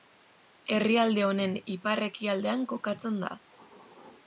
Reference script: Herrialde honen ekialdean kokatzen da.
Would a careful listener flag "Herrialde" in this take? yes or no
no